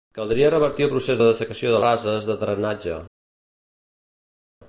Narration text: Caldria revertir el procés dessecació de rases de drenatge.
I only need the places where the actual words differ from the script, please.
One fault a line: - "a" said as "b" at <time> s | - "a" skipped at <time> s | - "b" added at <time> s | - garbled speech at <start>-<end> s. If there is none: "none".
none